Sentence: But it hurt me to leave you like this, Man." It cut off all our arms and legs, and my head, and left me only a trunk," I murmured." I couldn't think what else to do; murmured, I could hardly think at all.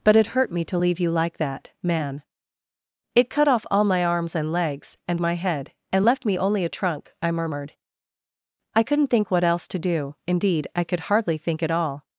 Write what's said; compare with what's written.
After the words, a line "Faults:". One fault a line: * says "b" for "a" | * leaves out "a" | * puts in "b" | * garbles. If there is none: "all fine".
But it hurt me to leave you like that, Man." It cut off all my arms and legs, and my head, and left me only a trunk," I murmured." I couldn't think what else to do; indeed, I could hardly think at all.
Faults:
* says "that" for "this"
* says "my" for "our"
* says "indeed" for "murmured"